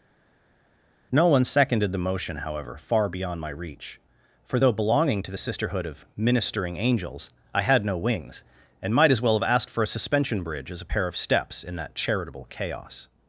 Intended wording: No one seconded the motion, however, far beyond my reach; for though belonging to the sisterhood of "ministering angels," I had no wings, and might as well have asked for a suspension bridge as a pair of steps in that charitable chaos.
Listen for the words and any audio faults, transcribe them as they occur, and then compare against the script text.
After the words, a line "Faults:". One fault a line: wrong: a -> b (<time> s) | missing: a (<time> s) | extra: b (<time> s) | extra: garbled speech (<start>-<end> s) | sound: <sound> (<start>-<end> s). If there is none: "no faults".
No one seconded the motion, however, far beyond my reach; for though belonging to the sisterhood of "ministering angels," I had no wings, and might as well have asked for a suspension bridge as a pair of steps in that charitable chaos.
Faults:
no faults